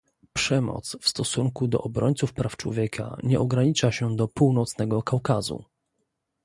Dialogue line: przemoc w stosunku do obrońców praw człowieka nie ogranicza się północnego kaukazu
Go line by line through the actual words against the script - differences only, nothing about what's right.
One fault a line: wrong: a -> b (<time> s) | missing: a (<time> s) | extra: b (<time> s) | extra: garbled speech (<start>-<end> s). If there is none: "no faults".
extra: do (4.2 s)